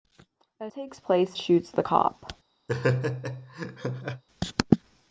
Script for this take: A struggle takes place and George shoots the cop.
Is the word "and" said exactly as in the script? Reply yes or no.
no